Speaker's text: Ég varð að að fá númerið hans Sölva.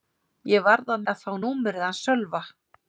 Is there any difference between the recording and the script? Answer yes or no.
no